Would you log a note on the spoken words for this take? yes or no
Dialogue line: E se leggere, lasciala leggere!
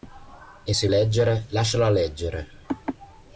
no